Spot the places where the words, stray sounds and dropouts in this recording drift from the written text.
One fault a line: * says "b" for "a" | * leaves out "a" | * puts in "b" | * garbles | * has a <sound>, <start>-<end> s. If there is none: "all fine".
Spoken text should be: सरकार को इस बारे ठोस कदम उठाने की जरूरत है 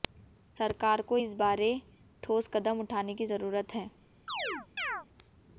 * has a chirp, 4.3-5.1 s